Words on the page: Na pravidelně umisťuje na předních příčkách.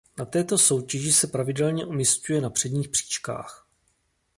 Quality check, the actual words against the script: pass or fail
fail